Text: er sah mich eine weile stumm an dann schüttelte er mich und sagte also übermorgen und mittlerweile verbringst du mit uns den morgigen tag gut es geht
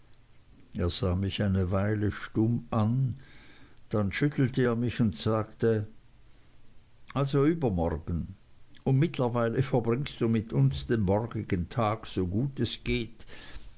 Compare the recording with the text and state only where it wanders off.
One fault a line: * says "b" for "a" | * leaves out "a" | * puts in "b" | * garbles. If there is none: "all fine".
* puts in "so"